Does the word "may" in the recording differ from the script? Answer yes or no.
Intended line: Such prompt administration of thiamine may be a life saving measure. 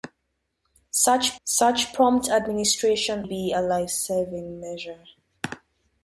yes